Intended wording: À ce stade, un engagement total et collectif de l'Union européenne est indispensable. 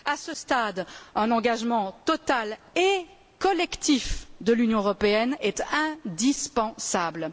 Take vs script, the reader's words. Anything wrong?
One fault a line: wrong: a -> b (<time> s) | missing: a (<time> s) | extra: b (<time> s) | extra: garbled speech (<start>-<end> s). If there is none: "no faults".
no faults